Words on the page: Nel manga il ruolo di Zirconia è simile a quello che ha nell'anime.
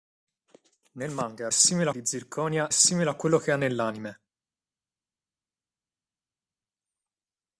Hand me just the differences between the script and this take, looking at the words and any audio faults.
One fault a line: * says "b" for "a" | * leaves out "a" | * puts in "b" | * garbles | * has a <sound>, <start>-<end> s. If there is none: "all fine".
* says "simile" for "ruolo"
* leaves out "è"